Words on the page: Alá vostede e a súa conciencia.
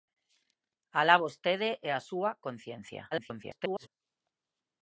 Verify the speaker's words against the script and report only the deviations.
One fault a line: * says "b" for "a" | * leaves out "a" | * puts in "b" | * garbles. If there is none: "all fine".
* garbles